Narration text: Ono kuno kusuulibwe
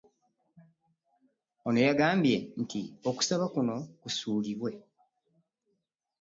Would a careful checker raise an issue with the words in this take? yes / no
yes